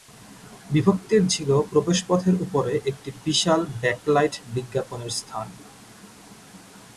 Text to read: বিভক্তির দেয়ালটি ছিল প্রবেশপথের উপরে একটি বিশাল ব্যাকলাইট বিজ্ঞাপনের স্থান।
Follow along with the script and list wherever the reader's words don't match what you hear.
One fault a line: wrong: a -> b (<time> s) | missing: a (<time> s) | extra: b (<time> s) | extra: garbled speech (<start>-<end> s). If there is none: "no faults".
missing: দেয়ালটি (1.2 s)